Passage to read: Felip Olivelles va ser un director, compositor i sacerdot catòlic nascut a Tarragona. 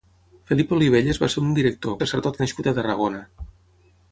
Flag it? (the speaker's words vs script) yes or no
yes